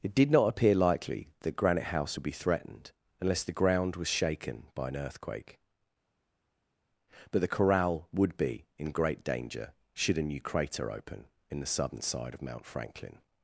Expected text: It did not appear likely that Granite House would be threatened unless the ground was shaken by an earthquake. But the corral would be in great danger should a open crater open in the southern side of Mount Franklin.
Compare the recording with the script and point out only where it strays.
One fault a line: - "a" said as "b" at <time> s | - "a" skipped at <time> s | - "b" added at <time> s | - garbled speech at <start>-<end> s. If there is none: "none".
- "open" said as "new" at 10.2 s